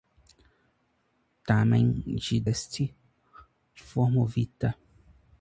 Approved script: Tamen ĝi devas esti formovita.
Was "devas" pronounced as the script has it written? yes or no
no